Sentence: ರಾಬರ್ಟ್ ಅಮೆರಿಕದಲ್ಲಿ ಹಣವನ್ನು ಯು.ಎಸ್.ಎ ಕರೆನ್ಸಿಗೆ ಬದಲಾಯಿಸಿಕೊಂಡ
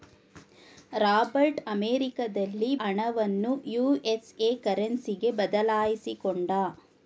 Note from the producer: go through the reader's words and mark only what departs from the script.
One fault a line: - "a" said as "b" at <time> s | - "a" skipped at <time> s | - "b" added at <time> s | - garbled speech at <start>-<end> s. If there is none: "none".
none